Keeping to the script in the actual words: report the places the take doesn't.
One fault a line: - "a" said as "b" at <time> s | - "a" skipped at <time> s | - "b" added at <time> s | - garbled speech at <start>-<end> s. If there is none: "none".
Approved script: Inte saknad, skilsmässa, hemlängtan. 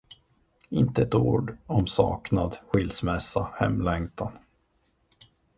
- "ett ord om" added at 1.0 s